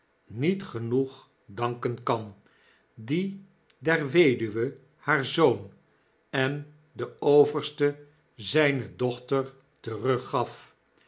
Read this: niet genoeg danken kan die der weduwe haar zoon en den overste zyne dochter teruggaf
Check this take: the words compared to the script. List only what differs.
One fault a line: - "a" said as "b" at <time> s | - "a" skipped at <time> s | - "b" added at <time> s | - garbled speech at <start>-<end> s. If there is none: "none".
none